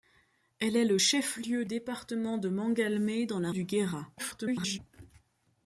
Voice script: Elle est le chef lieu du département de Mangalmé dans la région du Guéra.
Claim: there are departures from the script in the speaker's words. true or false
true